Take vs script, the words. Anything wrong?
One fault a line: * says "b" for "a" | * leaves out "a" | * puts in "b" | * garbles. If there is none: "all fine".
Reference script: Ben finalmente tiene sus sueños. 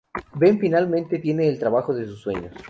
* puts in "el trabajo de"